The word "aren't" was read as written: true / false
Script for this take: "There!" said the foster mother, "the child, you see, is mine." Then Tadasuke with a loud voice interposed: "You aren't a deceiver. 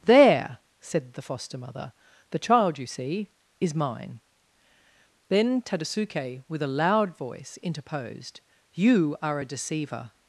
false